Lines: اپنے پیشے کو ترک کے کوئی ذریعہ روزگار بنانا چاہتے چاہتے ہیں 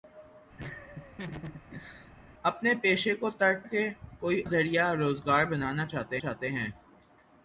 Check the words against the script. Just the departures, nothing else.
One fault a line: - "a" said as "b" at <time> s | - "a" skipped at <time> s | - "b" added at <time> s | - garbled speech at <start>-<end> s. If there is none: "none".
none